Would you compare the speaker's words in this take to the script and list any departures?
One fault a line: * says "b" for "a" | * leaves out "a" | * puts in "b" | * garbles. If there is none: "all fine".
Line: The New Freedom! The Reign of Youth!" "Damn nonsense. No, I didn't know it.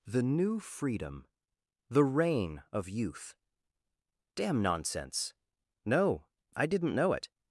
all fine